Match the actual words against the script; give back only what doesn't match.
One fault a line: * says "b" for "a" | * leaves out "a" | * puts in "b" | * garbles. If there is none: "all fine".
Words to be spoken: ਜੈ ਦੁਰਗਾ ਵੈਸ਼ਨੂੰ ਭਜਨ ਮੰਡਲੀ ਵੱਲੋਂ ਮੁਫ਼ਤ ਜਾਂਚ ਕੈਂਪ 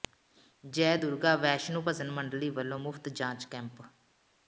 all fine